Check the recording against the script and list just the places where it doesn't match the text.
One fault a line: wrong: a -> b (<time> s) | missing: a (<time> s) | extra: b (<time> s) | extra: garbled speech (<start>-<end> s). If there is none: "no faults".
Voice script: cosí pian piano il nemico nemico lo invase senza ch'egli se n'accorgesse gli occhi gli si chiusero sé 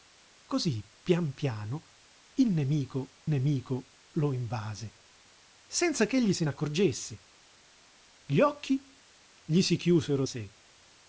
no faults